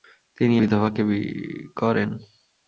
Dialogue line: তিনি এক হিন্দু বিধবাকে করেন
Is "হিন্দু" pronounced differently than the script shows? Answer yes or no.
yes